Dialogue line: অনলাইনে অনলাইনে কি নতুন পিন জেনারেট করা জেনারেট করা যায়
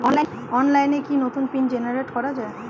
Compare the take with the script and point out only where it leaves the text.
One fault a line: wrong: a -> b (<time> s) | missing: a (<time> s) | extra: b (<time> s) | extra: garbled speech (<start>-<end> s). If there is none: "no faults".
missing: অনলাইনে (1.0 s)
missing: জেনারেট করা (2.3 s)